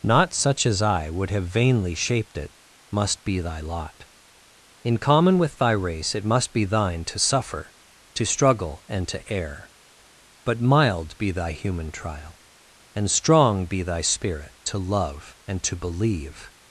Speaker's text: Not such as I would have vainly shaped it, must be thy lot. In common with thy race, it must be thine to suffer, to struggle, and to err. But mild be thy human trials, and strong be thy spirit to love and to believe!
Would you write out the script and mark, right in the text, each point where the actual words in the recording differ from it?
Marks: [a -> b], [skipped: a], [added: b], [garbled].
Not such as I would have vainly shaped it, must be thy lot. In common with thy race, it must be thine to suffer, to struggle, and to err. But mild be thy human [trials, -> trial] and strong be thy spirit to love and to believe!